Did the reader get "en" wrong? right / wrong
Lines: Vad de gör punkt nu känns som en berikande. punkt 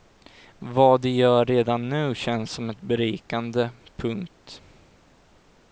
wrong